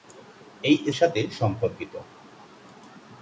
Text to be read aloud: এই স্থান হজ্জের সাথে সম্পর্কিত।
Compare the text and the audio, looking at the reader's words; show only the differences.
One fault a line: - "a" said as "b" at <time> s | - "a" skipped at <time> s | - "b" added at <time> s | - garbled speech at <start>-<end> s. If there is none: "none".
- "স্থান হজ্জের" skipped at 0.8 s